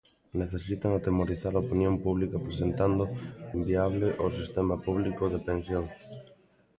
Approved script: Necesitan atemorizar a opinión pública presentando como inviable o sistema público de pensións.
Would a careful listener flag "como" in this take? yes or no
yes